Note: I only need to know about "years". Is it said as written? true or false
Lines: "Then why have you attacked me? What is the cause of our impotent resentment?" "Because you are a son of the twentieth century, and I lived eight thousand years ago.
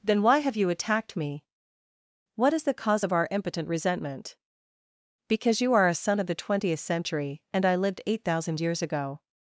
true